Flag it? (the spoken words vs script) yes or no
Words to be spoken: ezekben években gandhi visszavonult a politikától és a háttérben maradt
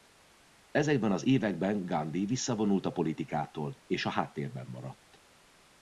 yes